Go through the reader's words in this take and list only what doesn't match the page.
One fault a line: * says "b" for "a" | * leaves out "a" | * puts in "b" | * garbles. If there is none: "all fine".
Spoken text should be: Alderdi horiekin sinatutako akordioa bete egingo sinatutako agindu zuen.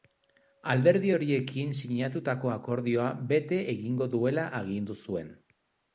* says "duela" for "sinatutako"